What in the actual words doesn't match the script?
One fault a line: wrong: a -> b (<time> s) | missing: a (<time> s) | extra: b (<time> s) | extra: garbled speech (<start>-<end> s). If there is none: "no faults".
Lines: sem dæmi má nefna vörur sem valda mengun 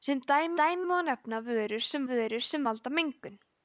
extra: dæmi (0.6 s)
extra: vörur sem (2.1 s)